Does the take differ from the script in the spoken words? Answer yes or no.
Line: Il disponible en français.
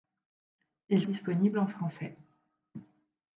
no